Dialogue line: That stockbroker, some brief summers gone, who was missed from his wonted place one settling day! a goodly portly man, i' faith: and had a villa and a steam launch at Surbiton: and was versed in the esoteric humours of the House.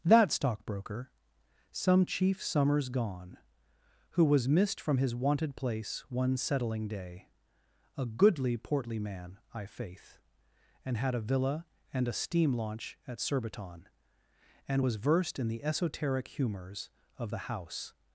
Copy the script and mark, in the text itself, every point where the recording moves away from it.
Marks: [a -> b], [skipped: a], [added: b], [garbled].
That stockbroker, some [brief -> chief] summers gone, who was missed from his wonted place one settling day! a goodly portly man, i' faith: and had a villa and a steam launch at Surbiton: and was versed in the esoteric humours of the House.